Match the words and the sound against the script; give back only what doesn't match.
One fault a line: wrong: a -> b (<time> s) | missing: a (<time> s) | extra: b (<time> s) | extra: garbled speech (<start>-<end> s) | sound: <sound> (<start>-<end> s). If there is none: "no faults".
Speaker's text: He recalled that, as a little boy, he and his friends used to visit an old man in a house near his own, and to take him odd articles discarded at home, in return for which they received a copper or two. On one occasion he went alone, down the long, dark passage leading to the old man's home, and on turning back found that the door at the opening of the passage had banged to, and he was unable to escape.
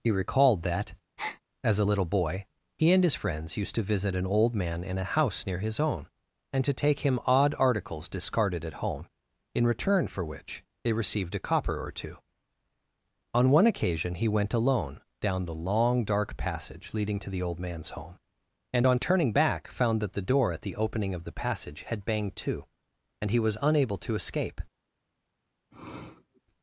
sound: breath (1.2-1.4 s)
sound: sniff (25.7-26.4 s)